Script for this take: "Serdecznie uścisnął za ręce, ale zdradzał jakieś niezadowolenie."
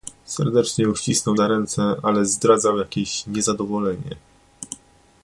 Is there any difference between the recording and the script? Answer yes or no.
no